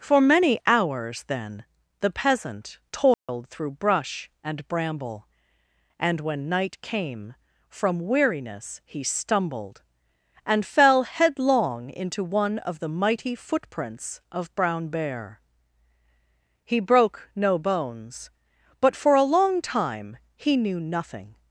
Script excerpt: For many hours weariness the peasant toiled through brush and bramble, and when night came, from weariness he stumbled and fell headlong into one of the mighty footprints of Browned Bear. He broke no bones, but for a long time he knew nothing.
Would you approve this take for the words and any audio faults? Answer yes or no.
no